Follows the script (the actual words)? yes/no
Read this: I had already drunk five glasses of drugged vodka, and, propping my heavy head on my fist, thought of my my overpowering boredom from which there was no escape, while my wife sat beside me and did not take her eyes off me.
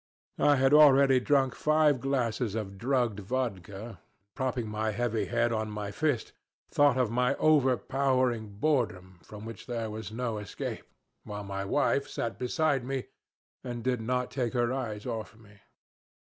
no